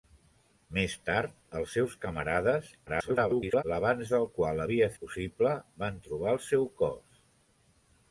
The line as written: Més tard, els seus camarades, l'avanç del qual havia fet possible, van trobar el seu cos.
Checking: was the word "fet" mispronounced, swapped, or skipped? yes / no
yes